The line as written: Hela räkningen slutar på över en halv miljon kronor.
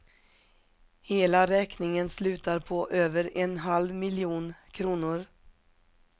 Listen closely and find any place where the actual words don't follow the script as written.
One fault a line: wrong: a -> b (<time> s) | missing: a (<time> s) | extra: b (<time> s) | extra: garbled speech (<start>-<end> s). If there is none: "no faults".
no faults